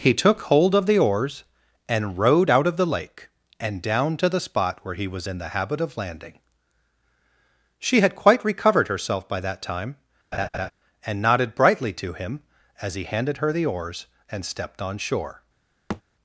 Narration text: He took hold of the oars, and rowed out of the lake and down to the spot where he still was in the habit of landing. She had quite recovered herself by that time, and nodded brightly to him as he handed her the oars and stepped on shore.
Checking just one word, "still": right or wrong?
wrong